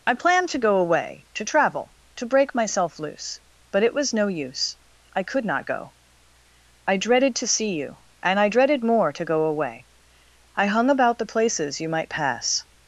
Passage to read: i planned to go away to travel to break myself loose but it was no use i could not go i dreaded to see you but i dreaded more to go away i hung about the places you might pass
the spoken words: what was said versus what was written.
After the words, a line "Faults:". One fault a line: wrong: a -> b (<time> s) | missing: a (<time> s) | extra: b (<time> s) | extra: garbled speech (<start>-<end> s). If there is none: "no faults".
i planned to go away to travel to break myself loose but it was no use i could not go i dreaded to see you and i dreaded more to go away i hung about the places you might pass
Faults:
wrong: but -> and (8.2 s)